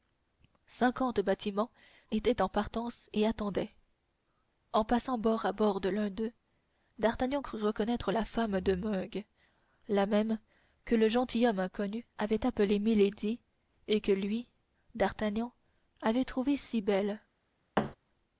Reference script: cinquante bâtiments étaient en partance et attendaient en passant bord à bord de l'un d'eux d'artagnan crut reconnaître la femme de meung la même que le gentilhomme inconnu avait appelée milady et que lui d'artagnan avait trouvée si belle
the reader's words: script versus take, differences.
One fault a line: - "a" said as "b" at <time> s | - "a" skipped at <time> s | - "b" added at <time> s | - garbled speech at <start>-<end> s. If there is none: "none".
none